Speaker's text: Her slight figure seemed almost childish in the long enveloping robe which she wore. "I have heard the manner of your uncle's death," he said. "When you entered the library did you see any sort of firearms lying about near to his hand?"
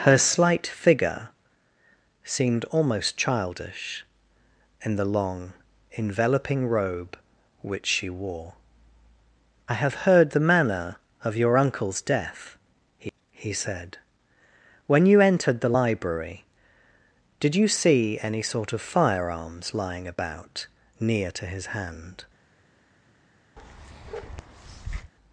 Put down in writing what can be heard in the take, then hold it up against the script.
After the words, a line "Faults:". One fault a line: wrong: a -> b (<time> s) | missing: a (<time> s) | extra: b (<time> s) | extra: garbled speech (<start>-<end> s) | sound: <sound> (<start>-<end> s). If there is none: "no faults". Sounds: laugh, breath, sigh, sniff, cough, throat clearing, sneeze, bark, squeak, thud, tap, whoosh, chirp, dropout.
Her slight figure seemed almost childish in the long enveloping robe which she wore. "I have heard the manner of your uncle's death," he he said. "When you entered the library did you see any sort of firearms lying about near to his hand?"
Faults:
extra: he (13.3 s)
sound: bark (23.6-25.1 s)